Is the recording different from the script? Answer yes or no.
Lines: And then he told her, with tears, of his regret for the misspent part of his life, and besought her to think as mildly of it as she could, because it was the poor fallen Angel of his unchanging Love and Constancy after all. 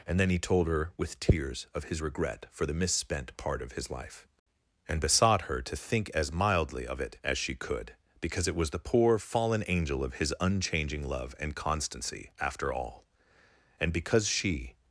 yes